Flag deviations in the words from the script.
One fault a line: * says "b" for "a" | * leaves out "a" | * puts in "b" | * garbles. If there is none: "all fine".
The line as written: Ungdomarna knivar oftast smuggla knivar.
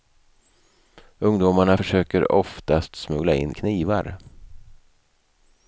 * says "försöker" for "knivar"
* puts in "in"